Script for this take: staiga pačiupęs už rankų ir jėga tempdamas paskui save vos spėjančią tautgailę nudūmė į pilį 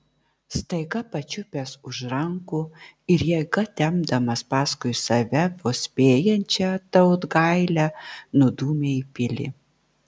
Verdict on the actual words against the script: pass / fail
pass